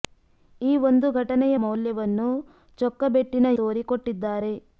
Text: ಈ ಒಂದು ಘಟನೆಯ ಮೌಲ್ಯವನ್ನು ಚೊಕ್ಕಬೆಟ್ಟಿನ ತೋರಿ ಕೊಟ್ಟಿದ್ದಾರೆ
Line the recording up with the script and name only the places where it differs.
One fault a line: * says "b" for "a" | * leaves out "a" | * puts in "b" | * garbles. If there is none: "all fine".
all fine